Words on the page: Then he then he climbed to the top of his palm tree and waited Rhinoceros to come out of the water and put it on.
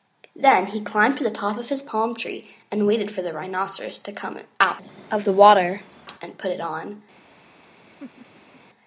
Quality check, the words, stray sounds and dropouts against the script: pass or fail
fail